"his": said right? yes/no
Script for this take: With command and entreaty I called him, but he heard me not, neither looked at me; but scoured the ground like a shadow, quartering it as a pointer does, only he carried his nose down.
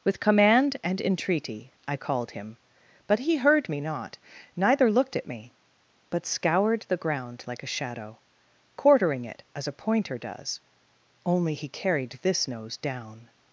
no